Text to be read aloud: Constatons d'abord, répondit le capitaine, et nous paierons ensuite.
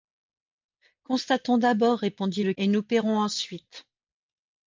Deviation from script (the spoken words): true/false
true